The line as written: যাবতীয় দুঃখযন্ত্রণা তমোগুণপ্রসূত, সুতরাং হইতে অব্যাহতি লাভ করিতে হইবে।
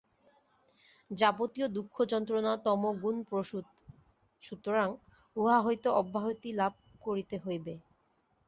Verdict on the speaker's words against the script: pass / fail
fail